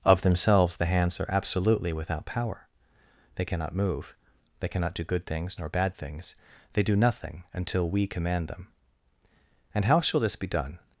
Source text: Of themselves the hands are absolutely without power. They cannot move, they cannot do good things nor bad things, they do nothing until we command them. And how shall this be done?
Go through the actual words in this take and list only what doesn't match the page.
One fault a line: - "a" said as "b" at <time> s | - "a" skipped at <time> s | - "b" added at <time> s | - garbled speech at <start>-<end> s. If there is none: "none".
none